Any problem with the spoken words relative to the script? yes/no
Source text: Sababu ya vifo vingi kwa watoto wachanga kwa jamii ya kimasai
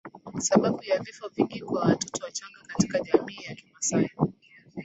yes